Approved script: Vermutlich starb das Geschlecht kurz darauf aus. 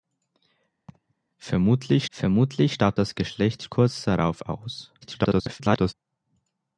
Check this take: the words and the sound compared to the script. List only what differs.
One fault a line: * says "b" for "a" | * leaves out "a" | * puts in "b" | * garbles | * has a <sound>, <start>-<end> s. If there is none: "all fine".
* has a laugh, 0.9-1.1 s
* puts in "vermutlich"
* garbles